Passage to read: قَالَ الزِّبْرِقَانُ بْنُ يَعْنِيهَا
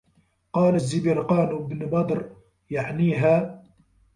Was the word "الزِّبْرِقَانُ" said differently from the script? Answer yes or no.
no